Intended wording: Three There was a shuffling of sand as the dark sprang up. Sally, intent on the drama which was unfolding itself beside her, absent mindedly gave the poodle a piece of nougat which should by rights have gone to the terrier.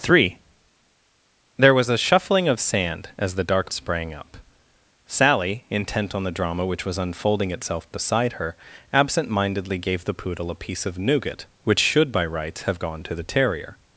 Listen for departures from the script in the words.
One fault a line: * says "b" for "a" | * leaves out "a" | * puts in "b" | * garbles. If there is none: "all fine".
all fine